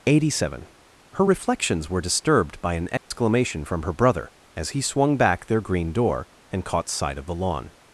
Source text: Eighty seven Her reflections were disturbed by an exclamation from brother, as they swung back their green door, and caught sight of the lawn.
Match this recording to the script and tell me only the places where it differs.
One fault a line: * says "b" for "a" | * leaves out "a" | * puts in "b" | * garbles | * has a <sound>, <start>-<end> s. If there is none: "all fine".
* has a dropout, 3.0-3.1 s
* puts in "her"
* says "he" for "they"